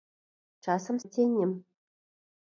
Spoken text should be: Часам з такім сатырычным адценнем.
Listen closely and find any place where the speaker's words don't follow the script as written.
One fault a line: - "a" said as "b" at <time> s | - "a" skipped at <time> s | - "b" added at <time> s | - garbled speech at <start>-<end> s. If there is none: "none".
- "такім сатырычным" skipped at 1.0 s